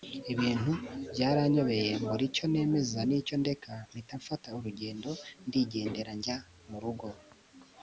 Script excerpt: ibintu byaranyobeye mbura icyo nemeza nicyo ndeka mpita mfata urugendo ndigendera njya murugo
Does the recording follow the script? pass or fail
pass